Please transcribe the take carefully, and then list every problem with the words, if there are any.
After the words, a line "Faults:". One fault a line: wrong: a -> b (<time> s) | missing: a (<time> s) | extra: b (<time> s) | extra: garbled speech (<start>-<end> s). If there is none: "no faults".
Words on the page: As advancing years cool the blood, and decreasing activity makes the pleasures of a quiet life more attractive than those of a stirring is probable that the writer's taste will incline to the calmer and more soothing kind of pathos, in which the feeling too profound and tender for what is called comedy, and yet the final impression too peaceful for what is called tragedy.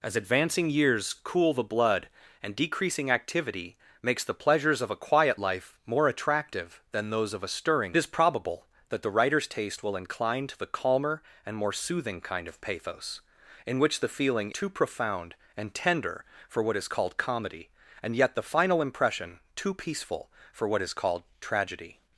As advancing years cool the blood, and decreasing activity makes the pleasures of a quiet life more attractive than those of a stirring is probable that the writer's taste will incline to the calmer and more soothing kind of pathos, in which the feeling too profound and tender for what is called comedy, and yet the final impression too peaceful for what is called tragedy.
Faults:
no faults